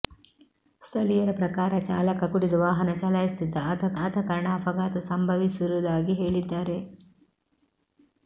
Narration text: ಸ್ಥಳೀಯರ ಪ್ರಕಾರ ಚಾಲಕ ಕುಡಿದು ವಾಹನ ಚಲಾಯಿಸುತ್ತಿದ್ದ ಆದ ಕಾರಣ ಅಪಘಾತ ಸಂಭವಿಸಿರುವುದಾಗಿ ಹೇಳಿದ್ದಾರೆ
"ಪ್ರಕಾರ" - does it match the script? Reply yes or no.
yes